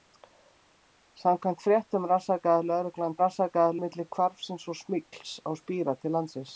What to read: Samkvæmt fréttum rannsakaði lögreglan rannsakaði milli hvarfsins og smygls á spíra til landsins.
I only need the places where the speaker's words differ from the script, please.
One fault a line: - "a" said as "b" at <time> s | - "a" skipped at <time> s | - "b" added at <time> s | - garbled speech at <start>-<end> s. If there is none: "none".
none